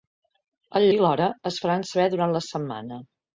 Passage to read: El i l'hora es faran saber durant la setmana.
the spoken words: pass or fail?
pass